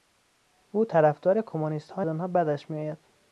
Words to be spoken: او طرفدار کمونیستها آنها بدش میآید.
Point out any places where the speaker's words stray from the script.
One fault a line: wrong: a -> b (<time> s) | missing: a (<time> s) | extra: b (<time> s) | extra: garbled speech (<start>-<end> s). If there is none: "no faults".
no faults